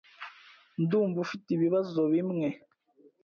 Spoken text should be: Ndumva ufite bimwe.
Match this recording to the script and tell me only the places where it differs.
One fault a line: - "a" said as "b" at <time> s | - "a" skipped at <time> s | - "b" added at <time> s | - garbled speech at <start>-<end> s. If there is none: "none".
- "ibibazo" added at 1.5 s